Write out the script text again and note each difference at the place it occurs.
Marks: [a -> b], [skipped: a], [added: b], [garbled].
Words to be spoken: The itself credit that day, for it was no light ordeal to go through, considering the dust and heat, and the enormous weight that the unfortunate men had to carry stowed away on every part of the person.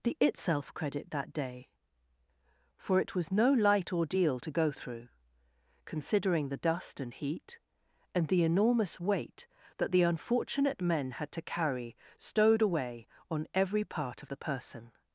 The itself credit that day, for it was no light ordeal to go through, considering the dust and heat, and the enormous weight that the unfortunate men had to carry stowed away on every part of the person.